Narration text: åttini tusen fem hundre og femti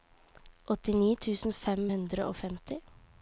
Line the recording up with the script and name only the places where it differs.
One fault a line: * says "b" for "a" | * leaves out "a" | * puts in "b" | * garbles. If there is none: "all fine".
all fine